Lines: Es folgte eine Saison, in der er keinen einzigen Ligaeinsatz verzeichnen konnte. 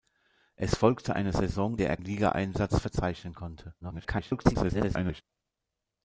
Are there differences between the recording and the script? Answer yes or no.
yes